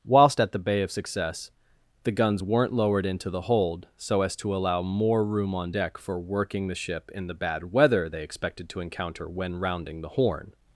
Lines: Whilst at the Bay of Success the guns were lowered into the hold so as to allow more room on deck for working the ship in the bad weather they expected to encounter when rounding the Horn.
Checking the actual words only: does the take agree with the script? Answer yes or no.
no